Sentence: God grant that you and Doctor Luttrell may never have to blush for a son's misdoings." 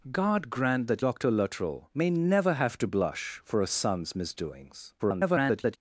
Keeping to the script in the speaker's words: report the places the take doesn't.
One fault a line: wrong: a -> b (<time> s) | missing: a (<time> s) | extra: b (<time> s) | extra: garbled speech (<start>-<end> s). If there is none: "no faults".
missing: you and (1.1 s)
extra: garbled speech (5.0-5.8 s)